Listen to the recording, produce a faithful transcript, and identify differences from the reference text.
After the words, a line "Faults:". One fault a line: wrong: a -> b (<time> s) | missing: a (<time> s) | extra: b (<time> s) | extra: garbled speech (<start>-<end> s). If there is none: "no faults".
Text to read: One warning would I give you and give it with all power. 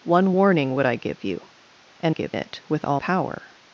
One warning would I give you and give it with all power.
Faults:
no faults